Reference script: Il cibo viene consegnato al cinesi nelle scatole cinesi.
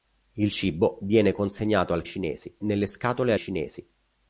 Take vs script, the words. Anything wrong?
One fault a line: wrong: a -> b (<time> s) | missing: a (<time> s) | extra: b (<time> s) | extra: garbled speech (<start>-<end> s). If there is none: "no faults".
no faults